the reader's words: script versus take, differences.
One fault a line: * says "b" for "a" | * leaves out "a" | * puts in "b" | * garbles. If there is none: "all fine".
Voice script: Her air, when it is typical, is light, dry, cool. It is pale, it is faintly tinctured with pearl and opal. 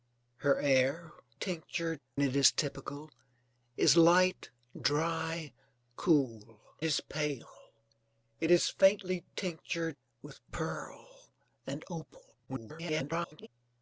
* says "tinctured" for "when"
* leaves out "It"
* garbles